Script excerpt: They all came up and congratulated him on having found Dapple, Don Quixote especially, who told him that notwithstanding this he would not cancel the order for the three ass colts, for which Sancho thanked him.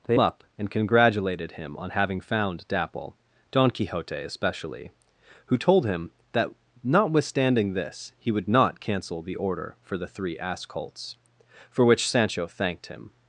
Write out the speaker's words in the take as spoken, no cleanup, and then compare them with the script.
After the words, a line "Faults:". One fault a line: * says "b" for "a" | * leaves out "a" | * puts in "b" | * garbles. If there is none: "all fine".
They up and congratulated him on having found Dapple, Don Quixote especially, who told him that notwithstanding this he would not cancel the order for the three ass colts, for which Sancho thanked him.
Faults:
* leaves out "all came"